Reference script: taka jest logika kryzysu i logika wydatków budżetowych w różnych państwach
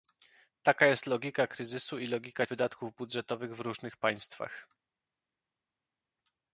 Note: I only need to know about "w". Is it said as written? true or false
true